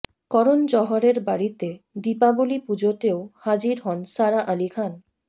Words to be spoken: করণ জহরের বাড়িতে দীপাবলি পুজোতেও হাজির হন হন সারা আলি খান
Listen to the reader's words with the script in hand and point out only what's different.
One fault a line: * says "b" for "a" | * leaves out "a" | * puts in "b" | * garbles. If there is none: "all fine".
* leaves out "হন"